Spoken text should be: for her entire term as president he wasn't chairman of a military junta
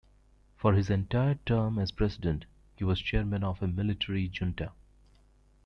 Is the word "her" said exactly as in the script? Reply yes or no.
no